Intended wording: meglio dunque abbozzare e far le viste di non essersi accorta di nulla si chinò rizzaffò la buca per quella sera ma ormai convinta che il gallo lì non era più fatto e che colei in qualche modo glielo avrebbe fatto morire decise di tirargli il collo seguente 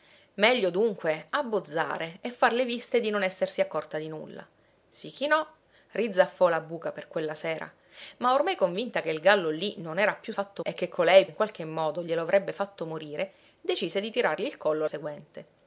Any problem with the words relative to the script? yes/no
no